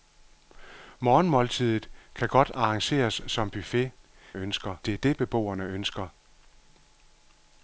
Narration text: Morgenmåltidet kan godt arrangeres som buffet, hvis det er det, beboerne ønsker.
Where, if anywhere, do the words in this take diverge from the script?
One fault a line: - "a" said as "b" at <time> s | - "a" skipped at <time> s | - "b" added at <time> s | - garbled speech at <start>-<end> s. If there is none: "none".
- "hvis" said as "ønsker" at 4.3 s